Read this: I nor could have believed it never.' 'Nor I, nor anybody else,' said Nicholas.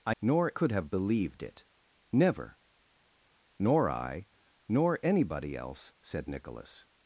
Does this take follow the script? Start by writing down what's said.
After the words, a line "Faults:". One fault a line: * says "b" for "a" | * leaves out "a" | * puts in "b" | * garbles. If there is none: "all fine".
I nor could have believed it never.' 'Nor I, nor anybody else,' said Nicholas.
Faults:
all fine